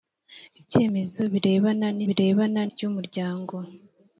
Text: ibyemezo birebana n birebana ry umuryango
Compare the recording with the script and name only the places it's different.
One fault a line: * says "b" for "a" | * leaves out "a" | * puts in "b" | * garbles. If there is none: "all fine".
all fine